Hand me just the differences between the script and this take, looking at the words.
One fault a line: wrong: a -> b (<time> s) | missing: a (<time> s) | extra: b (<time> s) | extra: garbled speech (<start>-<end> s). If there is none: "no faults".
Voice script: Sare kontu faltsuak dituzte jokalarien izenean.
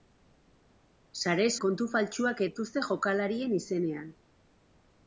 no faults